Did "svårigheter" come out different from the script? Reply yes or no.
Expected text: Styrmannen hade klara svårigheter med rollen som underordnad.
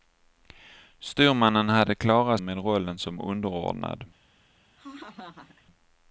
yes